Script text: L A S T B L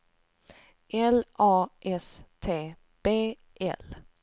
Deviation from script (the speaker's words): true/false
false